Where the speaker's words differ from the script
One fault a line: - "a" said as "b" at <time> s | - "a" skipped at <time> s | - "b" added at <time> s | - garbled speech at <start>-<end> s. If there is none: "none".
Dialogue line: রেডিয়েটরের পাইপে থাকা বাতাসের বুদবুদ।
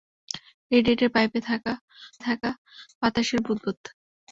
- "থাকা" added at 2.3 s